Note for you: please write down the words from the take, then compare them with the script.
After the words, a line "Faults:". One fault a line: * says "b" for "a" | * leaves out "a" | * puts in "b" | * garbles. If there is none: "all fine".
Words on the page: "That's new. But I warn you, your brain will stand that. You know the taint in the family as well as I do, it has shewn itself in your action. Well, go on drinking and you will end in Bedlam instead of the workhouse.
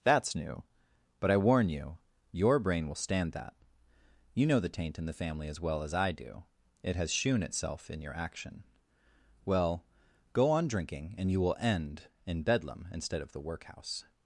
"That's new. But I warn you, your brain will stand that. You know the taint in the family as well as I do, it has shewn itself in your action. Well, go on drinking and you will end in Bedlam instead of the workhouse.
Faults:
all fine